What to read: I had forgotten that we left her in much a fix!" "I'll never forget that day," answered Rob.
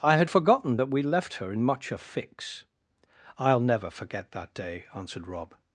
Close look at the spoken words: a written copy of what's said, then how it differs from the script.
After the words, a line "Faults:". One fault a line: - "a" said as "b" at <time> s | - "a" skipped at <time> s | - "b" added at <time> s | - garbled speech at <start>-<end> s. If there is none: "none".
I had forgotten that we left her in much a fix!" "I'll never forget that day," answered Rob.
Faults:
none